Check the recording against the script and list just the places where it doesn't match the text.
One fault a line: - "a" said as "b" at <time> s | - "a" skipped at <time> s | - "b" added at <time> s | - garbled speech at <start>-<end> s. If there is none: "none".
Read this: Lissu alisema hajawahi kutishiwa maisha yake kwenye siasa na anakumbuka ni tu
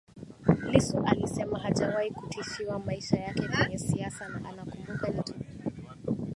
none